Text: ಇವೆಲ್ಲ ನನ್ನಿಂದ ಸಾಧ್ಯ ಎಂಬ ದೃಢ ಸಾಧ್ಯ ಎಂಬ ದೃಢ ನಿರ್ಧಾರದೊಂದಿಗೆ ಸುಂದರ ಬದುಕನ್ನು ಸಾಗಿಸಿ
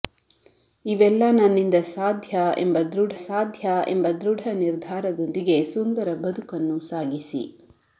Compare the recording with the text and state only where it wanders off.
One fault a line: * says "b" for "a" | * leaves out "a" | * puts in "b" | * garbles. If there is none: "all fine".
all fine